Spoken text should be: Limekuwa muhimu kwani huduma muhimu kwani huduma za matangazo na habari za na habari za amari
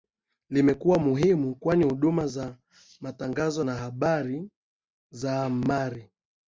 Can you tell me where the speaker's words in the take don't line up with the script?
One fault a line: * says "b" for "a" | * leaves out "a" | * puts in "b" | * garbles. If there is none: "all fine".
* leaves out "muhimu kwani huduma"
* leaves out "na habari za"